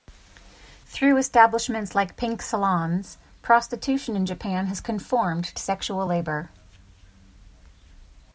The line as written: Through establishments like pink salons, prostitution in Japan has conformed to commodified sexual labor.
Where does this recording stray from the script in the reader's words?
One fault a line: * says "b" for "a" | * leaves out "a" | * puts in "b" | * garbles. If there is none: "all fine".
* leaves out "to commodified"